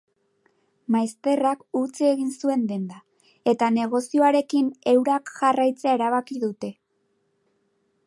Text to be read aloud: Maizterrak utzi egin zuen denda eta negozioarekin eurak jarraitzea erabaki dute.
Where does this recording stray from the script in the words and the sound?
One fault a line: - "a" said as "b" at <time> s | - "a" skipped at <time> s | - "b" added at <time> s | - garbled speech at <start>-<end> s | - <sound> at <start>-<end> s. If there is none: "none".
none